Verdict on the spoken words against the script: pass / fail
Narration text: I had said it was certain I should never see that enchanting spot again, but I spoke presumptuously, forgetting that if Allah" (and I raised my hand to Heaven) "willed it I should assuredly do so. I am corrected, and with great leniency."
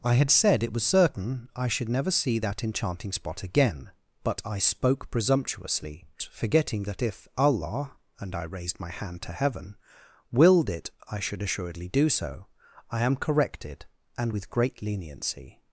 pass